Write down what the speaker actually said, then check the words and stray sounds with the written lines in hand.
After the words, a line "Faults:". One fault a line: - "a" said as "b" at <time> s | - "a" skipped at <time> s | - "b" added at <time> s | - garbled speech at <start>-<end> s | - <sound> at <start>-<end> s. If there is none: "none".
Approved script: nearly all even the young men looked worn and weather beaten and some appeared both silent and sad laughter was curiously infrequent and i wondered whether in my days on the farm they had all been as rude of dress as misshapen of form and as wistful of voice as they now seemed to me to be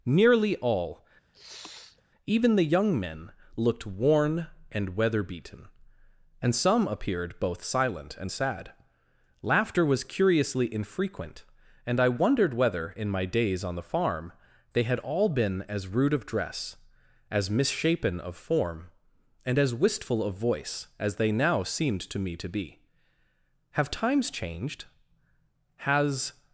nearly all even the young men looked worn and weather beaten and some appeared both silent and sad laughter was curiously infrequent and i wondered whether in my days on the farm they had all been as rude of dress as misshapen of form and as wistful of voice as they now seemed to me to be have times changed has
Faults:
- sniff at 1.3-2.0 s
- "have times changed has" added at 23.7 s